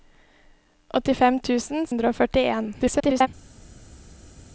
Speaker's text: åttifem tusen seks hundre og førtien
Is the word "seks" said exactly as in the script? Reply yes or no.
no